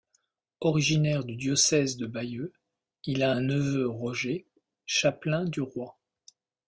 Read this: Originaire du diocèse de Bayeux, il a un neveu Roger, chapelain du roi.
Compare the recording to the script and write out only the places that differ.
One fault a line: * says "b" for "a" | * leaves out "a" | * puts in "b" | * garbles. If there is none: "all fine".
all fine